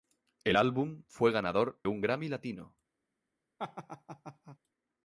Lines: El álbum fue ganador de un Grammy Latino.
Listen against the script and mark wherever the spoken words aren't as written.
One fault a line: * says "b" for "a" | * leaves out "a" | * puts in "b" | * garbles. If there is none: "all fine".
* leaves out "de"